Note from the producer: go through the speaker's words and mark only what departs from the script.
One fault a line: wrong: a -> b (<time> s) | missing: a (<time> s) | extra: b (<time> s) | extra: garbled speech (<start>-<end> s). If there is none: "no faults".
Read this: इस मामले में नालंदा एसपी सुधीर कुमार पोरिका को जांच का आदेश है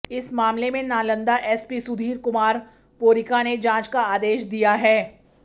wrong: को -> ने (3.4 s)
extra: दिया (4.4 s)